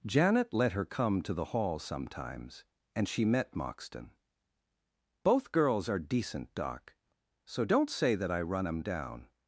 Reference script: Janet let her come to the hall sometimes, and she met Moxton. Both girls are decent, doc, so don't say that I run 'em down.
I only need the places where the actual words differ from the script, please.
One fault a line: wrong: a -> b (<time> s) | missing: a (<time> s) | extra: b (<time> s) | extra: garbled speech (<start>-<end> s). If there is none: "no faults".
no faults